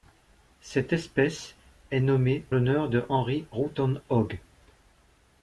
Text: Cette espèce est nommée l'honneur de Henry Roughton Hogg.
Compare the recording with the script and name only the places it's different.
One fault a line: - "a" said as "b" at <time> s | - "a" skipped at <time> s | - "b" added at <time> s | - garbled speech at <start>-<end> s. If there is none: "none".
none